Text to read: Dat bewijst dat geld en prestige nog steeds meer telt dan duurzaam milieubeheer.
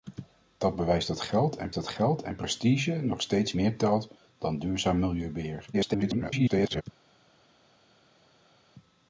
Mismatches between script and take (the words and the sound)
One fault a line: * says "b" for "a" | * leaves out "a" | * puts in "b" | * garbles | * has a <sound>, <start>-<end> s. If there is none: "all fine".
* puts in "dat geld en"
* garbles